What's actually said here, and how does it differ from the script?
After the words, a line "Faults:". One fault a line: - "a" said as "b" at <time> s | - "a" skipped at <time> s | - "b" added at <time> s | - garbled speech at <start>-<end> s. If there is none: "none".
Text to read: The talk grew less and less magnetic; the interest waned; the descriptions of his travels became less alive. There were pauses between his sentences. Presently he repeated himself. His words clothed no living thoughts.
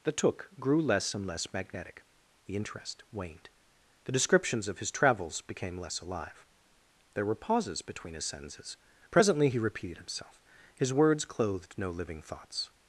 The took grew less and less magnetic; the interest waned; the descriptions of his travels became less alive. There were pauses between his sentences. Presently he repeated himself. His words clothed no living thoughts.
Faults:
- "talk" said as "took" at 0.1 s